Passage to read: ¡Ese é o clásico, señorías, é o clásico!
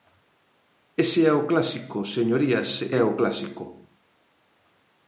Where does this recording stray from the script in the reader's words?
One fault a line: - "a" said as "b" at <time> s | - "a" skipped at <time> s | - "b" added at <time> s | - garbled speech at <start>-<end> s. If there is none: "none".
none